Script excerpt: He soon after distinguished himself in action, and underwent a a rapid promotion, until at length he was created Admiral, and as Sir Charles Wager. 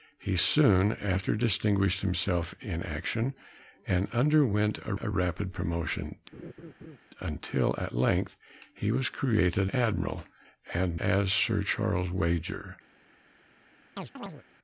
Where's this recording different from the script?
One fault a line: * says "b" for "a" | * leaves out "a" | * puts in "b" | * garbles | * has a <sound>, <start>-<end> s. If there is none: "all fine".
* has a laugh, 6.3-7.0 s
* has a chirp, 14.0-14.4 s